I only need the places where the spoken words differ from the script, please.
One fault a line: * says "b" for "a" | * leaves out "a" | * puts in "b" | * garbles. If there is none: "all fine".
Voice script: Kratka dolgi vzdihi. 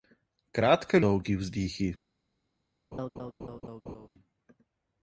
all fine